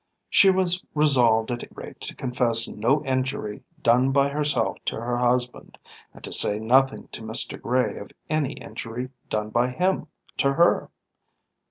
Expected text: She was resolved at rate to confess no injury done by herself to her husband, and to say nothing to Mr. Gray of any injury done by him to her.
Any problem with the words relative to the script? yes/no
no